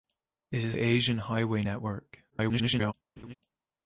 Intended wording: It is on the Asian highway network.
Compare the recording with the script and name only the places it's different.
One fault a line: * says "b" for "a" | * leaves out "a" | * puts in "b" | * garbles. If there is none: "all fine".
* leaves out "on"
* garbles